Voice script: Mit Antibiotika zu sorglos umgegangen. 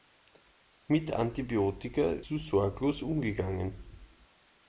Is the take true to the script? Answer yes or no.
yes